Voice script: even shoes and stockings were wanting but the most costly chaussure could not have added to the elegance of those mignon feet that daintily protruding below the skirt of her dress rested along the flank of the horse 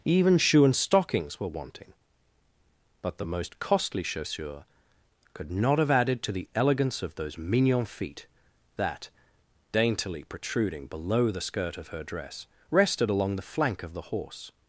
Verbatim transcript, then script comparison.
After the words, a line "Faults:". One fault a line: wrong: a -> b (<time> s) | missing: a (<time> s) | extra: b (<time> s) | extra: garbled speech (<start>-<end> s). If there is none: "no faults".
even shoe and stockings were wanting but the most costly chaussure could not have added to the elegance of those mignon feet that daintily protruding below the skirt of her dress rested along the flank of the horse
Faults:
wrong: shoes -> shoe (0.4 s)